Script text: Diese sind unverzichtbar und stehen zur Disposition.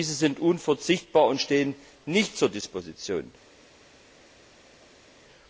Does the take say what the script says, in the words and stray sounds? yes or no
no